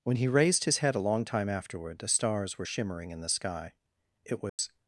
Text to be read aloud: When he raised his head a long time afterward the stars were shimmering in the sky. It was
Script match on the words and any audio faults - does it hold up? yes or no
no